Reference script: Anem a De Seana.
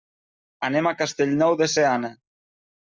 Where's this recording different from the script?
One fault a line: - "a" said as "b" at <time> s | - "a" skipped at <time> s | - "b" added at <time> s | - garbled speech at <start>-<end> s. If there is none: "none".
- "Castellnou" added at 1.0 s